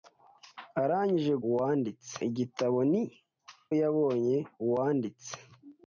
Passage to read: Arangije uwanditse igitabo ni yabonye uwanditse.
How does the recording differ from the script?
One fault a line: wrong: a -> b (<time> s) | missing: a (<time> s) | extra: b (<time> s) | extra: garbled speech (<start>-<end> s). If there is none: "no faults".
no faults